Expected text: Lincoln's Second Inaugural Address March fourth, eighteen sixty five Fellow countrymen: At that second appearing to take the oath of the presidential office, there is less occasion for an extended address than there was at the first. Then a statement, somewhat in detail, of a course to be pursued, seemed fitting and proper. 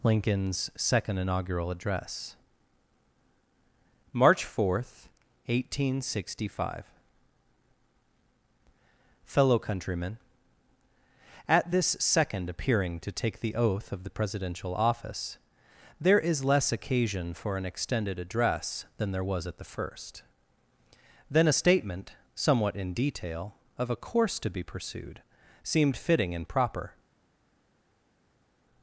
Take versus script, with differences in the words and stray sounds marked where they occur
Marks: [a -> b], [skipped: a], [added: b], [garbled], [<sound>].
Lincoln's Second Inaugural Address March fourth, eighteen sixty five Fellow countrymen: At [that -> this] second appearing to take the oath of the presidential office, there is less occasion for an extended address than there was at the first. Then a statement, somewhat in detail, of a course to be pursued, seemed fitting and proper.